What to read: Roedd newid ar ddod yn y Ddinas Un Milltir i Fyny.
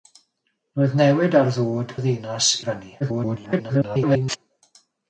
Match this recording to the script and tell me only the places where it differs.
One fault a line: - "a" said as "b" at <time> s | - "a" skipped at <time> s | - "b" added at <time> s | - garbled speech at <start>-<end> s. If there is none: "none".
- "yn" skipped at 1.9 s
- "Un Milltir" skipped at 2.5 s
- garbled speech at 3.0-4.4 s